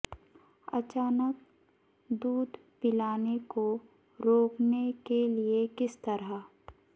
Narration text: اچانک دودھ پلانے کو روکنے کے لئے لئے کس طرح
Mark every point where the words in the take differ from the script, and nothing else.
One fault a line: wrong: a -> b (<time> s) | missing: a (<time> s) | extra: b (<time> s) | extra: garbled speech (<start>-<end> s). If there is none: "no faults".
missing: لئے (5.7 s)